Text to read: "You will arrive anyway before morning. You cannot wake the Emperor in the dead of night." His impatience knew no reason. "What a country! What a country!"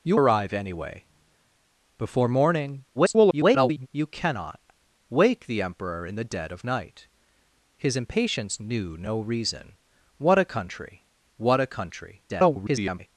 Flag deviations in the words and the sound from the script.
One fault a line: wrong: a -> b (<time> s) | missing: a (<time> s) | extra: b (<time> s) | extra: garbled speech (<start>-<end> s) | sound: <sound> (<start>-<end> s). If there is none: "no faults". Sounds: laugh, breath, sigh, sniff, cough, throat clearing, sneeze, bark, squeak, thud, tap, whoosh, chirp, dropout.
missing: will (0.2 s)
extra: garbled speech (2.9-3.9 s)
extra: garbled speech (12.3-13.1 s)